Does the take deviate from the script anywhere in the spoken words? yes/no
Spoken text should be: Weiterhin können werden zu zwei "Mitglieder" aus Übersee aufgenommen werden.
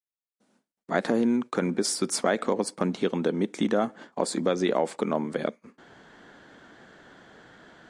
yes